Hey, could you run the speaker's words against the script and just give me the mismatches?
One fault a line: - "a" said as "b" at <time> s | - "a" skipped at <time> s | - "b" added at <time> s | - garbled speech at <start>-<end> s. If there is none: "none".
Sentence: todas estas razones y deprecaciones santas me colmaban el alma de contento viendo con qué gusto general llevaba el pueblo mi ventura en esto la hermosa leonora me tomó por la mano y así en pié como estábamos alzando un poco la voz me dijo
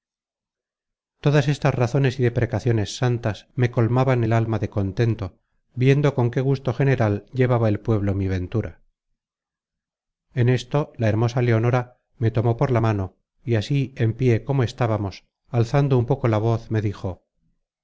none